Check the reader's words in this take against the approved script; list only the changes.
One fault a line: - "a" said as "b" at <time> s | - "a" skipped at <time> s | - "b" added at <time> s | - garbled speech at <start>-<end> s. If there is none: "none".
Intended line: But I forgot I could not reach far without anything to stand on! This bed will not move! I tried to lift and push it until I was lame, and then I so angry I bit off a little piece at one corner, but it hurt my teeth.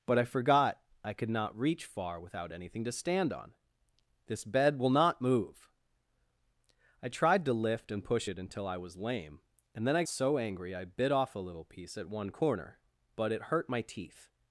none